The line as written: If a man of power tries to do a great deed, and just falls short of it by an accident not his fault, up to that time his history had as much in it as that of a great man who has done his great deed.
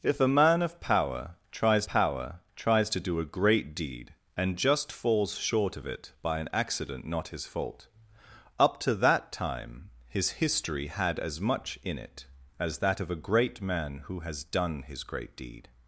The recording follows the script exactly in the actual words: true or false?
false